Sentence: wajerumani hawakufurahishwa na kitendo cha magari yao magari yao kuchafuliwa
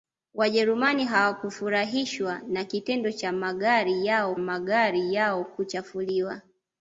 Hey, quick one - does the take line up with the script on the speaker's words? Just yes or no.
yes